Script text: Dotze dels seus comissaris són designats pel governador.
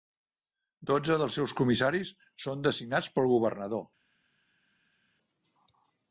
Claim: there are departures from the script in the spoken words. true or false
false